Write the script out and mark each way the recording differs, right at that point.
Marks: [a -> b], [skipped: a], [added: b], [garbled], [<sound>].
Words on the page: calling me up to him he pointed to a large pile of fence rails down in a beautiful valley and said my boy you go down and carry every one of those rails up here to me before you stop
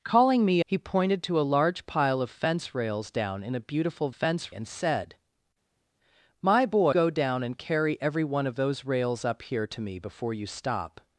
calling me [skipped: up to him] he pointed to a large pile of fence rails down in a beautiful [valley -> fence] and said my boy [skipped: you] go down and carry every one of those rails up here to me before you stop